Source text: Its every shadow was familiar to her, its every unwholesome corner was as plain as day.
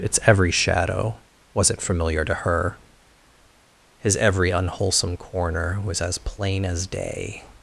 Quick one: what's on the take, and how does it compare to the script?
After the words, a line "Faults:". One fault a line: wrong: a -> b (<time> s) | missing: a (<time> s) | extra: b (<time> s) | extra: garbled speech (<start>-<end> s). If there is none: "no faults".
Its every shadow wasn't familiar to her, his every unwholesome corner was as plain as day.
Faults:
wrong: was -> wasn't (1.5 s)
wrong: its -> his (4.0 s)